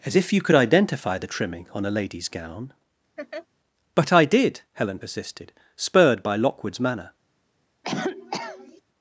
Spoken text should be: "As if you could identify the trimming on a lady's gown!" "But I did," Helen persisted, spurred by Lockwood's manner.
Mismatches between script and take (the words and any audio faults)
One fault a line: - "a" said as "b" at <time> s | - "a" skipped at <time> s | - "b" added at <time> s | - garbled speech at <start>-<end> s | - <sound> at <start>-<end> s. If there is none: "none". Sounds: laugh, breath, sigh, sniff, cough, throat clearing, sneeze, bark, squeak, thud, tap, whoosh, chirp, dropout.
- laugh at 3.2-3.5 s
- cough at 7.8-8.8 s